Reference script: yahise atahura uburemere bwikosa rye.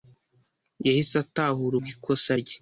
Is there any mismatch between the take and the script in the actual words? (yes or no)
yes